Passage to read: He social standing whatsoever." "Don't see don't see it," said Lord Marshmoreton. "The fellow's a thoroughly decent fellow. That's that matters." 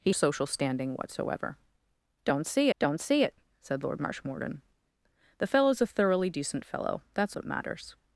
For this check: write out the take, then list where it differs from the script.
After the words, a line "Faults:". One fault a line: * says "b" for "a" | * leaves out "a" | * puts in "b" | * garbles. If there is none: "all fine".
He social standing whatsoever." "Don't see don't see it," said Lord Marshmoreton. "The fellow's a thoroughly decent fellow. That's that matters."
Faults:
all fine